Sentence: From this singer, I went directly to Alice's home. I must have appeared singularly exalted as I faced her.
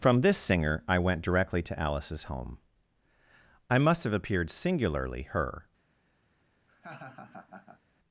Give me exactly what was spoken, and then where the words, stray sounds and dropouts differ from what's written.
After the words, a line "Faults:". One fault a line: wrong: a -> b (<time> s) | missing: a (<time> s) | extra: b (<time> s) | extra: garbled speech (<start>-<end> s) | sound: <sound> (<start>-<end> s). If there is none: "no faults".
From this singer, I went directly to Alice's home. I must have appeared singularly her.
Faults:
missing: exalted as I faced (5.2 s)
sound: laugh (6.7-7.8 s)